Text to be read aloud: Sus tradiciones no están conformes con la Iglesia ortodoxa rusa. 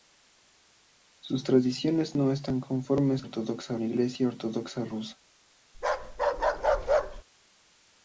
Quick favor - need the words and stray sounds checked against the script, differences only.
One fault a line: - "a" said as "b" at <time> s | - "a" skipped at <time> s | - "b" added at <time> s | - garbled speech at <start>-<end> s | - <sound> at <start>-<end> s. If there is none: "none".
- "con" said as "ortodoxa" at 3.2 s
- bark at 5.7-7.2 s